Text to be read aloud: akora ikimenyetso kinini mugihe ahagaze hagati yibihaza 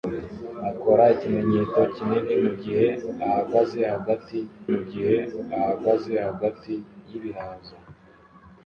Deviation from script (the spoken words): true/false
true